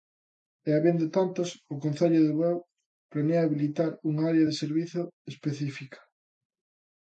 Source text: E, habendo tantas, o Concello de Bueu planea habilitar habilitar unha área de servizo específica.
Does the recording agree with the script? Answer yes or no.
no